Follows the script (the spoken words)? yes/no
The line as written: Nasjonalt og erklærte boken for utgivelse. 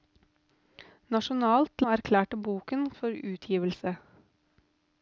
yes